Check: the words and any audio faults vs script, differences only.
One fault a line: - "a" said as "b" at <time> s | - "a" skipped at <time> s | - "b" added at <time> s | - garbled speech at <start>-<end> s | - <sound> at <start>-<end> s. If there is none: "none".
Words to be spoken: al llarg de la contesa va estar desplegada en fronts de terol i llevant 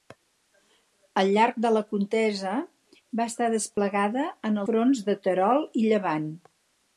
- dropout at 3.7-3.8 s